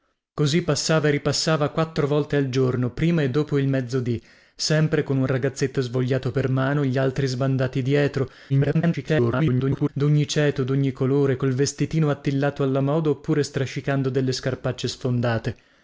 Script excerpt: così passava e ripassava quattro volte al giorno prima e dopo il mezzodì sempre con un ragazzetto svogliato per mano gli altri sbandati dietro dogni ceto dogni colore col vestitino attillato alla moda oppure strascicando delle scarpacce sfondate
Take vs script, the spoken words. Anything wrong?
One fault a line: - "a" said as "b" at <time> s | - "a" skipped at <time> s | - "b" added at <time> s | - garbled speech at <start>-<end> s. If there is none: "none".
- garbled speech at 8.5-9.9 s